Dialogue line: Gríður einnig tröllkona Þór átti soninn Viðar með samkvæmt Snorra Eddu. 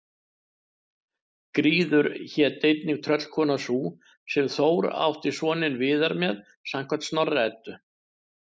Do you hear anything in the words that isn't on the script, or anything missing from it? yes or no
yes